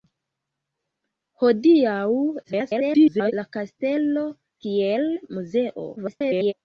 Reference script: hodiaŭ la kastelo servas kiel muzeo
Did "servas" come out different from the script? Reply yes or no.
yes